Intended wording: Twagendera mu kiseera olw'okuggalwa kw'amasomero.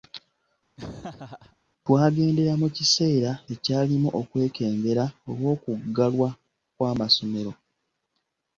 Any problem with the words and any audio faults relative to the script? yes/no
yes